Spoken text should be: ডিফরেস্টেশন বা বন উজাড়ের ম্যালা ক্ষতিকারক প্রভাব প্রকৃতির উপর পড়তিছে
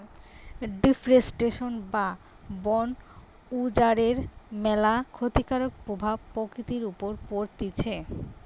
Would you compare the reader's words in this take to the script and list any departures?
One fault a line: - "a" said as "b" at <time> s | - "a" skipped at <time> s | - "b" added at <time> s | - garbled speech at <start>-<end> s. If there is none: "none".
none